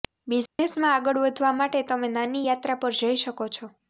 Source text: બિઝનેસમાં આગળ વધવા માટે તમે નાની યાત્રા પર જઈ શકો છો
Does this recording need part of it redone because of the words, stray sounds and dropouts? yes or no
yes